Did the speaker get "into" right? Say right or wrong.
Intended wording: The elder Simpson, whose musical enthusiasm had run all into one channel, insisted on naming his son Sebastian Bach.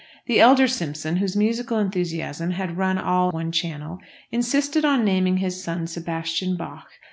wrong